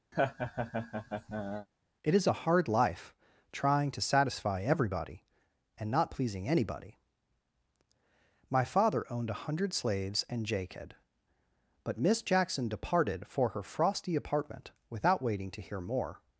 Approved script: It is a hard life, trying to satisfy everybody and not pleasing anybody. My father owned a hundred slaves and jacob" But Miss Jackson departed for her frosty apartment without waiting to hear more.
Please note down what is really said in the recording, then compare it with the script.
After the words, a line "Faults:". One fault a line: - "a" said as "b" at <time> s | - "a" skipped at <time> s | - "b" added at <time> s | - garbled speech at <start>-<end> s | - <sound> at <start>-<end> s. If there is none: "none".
It is a hard life, trying to satisfy everybody and not pleasing anybody. My father owned a hundred slaves and jacob" But Miss Jackson departed for her frosty apartment without waiting to hear more.
Faults:
- laugh at 0.1-1.7 s